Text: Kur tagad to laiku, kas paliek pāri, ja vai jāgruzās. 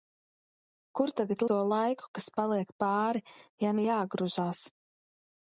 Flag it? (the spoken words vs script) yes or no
no